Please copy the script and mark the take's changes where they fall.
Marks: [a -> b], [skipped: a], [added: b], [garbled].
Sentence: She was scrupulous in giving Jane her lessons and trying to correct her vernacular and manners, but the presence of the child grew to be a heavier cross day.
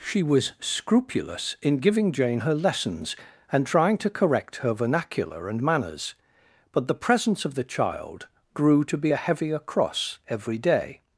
She was scrupulous in giving Jane her lessons and trying to correct her vernacular and manners, but the presence of the child grew to be a heavier cross [added: every] day.